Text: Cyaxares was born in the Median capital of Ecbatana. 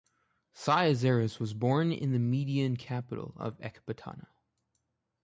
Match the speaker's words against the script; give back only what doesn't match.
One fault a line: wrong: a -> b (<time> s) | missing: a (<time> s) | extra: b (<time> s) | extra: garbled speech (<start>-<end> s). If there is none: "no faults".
no faults